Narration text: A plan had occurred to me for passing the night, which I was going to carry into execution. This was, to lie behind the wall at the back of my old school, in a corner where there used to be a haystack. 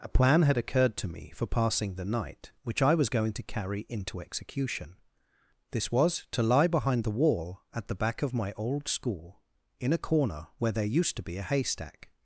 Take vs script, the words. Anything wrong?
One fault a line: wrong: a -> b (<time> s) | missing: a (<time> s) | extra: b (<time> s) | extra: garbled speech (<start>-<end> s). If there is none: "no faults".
no faults